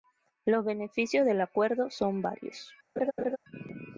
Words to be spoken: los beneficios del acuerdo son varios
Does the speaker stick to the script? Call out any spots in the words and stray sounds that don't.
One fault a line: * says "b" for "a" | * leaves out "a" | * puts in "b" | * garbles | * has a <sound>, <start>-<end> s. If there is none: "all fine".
* has a laugh, 3.0-3.4 s